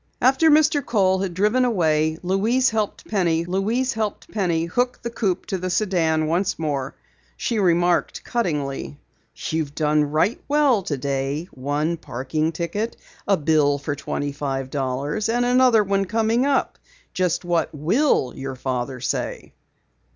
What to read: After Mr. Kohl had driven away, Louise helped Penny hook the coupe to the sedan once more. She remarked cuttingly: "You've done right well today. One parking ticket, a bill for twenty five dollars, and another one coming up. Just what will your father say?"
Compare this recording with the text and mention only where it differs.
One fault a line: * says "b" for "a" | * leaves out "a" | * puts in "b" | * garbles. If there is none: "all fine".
* puts in "Louise helped Penny"